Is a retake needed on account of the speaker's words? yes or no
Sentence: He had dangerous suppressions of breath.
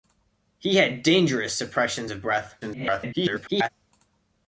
yes